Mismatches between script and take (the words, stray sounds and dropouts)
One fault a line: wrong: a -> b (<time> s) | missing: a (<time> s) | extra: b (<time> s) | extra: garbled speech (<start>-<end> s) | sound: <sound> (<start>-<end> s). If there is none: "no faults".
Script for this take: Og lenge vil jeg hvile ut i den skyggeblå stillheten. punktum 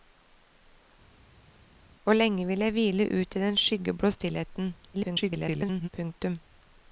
extra: garbled speech (4.9-5.9 s)